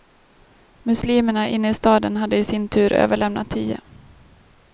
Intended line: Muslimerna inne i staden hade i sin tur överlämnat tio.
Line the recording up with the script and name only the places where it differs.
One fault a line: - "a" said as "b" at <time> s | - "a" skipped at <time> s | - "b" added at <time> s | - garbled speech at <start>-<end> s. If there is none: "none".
none